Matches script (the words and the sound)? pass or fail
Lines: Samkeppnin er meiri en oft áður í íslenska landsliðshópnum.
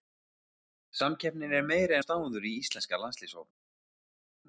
fail